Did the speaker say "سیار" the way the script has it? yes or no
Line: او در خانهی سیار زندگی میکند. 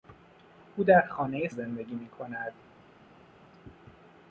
no